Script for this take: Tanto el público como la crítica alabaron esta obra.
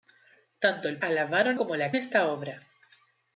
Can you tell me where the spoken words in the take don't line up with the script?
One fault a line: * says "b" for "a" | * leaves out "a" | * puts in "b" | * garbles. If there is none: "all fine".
* says "alabaron" for "público"
* leaves out "crítica alabaron"